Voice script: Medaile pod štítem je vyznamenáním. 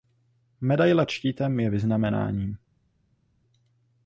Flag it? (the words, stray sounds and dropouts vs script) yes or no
yes